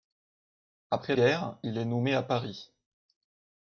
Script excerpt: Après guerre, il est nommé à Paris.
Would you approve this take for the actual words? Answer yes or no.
yes